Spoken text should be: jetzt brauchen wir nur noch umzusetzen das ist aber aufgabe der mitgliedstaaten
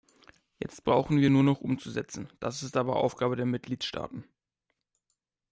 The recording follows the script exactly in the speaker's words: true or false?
true